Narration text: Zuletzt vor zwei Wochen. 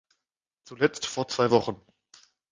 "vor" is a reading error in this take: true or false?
false